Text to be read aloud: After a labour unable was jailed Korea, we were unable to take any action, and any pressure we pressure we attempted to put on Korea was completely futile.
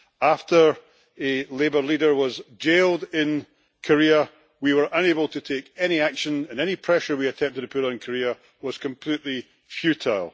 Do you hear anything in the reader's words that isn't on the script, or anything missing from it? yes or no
yes